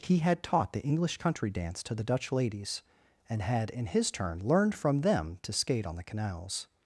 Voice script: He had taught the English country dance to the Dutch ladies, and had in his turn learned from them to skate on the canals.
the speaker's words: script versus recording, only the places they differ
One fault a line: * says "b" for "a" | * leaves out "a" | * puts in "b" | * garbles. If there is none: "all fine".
all fine